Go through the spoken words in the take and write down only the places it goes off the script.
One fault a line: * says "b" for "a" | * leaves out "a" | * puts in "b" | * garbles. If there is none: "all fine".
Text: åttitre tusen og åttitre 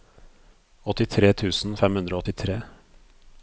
* puts in "fem hundre"